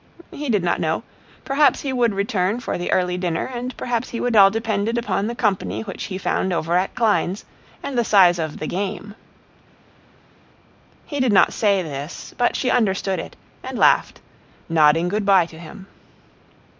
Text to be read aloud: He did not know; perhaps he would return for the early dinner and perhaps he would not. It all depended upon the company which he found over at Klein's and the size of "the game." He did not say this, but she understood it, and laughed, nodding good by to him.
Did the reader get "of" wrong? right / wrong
right